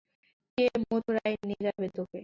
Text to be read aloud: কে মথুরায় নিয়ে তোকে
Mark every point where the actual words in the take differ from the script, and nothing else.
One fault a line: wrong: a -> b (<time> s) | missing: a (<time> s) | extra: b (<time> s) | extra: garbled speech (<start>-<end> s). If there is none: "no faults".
extra: যাবে (1.7 s)